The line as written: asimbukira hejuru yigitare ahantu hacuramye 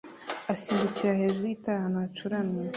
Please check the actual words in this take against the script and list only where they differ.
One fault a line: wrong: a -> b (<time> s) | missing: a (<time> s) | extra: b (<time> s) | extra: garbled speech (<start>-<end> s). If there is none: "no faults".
no faults